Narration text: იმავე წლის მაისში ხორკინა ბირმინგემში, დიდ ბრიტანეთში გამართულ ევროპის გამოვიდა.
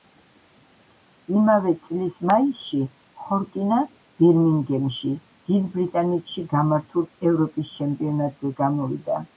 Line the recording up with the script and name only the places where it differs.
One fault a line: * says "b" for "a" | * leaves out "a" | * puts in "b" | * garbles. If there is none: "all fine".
* puts in "ჩემპიონატზე"